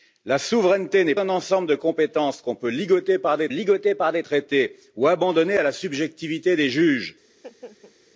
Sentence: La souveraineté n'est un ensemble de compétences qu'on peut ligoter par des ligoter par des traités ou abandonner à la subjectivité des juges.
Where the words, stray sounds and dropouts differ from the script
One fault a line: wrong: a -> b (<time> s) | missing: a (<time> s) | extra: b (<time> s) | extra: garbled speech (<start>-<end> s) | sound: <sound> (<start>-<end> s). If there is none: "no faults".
sound: laugh (7.3-8.0 s)